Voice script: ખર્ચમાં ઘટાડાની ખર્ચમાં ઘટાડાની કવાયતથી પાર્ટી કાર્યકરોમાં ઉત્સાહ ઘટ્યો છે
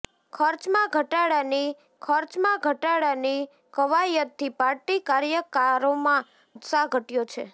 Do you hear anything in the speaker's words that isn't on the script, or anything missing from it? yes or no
no